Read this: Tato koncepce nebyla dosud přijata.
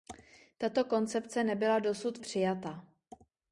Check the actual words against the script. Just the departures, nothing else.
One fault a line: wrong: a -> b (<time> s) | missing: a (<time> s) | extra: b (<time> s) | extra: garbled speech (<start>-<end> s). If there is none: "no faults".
no faults